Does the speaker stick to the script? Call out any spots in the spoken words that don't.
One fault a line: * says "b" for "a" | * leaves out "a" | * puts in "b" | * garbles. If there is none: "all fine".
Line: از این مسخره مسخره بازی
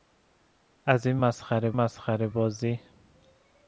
all fine